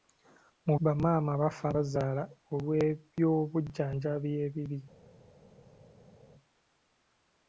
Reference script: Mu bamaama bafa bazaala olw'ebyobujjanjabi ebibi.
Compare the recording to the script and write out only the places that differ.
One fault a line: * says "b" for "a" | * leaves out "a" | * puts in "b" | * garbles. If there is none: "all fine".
all fine